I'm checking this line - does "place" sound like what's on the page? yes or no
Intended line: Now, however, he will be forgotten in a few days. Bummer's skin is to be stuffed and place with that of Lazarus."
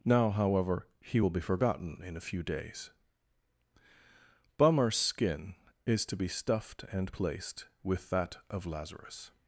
no